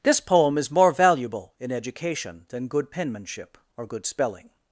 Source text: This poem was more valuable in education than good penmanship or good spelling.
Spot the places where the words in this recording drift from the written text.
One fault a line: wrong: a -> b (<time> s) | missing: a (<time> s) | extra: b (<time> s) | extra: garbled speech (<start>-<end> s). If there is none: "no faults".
wrong: was -> is (0.6 s)